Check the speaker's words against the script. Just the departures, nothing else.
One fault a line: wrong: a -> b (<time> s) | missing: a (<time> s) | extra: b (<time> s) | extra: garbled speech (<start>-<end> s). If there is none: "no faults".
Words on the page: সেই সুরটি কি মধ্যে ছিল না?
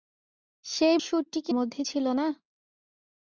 no faults